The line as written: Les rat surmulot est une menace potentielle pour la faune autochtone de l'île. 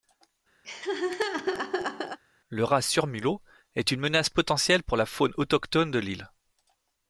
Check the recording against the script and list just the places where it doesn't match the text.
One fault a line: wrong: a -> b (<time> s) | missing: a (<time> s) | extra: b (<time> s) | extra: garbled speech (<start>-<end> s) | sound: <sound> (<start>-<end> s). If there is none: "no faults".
sound: laugh (0.6-2.2 s)
wrong: Les -> Le (2.5 s)